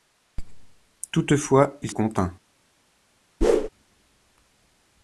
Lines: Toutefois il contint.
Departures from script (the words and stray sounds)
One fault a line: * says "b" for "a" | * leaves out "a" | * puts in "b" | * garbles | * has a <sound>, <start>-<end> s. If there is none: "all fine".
* has a whoosh, 3.4-3.7 s